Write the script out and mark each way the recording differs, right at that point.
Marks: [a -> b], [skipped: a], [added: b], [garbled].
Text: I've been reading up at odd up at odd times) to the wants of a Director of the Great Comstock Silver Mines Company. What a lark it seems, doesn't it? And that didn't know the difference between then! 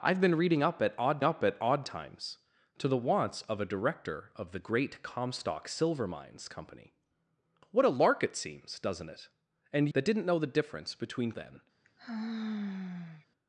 I've been reading up at odd up at odd times) to the wants of a Director of the Great Comstock Silver Mines Company. What a lark it seems, doesn't it? And that didn't know the difference between then!